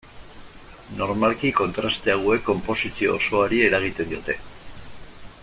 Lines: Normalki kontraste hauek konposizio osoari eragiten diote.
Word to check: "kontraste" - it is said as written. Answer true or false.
true